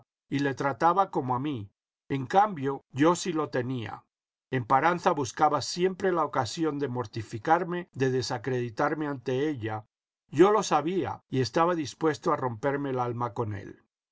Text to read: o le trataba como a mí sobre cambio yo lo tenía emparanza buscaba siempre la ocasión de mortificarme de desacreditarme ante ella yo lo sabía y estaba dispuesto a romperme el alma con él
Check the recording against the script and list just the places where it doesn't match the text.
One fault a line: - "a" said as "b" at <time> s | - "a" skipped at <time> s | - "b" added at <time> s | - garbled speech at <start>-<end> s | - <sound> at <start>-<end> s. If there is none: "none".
- "o" said as "y" at 0.3 s
- "sobre" said as "en" at 2.1 s
- "sí" added at 3.2 s